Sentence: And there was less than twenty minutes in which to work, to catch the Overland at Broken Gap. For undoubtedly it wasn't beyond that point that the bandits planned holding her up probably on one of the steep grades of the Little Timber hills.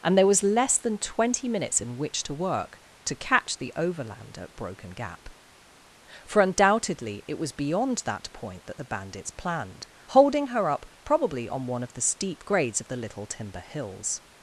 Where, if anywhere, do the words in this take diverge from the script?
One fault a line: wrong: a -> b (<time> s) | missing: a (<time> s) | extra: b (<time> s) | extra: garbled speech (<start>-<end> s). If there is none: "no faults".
wrong: wasn't -> was (7.4 s)